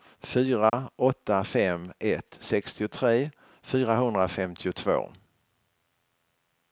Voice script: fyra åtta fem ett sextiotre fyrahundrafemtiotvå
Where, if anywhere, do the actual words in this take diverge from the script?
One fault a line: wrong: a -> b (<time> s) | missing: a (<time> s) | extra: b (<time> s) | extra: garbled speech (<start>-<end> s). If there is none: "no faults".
no faults